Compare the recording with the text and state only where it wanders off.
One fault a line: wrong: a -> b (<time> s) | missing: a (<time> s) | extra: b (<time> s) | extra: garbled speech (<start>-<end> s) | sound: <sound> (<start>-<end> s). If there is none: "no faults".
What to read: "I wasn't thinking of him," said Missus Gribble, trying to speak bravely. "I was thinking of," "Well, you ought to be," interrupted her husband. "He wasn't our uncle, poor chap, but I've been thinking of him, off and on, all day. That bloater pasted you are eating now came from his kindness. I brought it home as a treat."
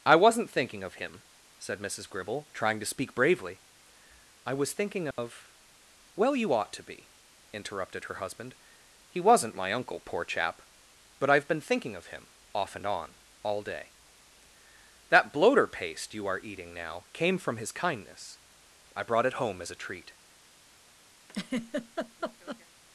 sound: dropout (5.1-5.2 s)
wrong: our -> my (9.5 s)
wrong: pasted -> paste (15.7 s)
sound: laugh (21.3-22.7 s)